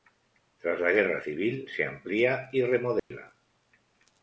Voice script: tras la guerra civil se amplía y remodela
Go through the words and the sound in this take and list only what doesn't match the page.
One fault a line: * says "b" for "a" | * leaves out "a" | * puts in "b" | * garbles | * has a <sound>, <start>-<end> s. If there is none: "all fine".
* has a dropout, 3.0-3.1 s